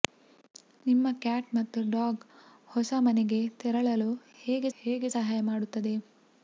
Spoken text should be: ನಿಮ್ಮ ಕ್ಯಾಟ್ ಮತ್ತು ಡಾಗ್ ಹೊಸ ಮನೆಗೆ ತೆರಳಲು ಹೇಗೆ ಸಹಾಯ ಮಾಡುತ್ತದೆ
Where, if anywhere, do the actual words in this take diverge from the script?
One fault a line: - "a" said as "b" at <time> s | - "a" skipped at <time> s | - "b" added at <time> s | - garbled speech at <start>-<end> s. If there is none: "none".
- "ಹೇಗೆ" added at 4.8 s